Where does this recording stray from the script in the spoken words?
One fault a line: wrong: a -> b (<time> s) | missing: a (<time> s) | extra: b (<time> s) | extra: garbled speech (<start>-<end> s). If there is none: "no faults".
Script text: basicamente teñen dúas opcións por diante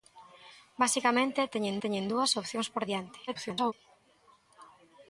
extra: teñen (1.8 s)
extra: garbled speech (3.3-3.7 s)